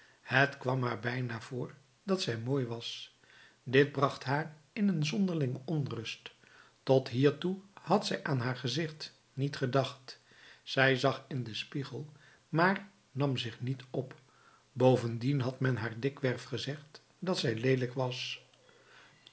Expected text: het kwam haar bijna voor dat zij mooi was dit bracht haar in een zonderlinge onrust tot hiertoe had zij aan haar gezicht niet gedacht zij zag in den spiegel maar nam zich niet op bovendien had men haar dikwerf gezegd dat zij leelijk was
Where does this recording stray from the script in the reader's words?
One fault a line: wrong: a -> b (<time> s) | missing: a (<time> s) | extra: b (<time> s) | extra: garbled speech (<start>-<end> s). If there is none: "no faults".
no faults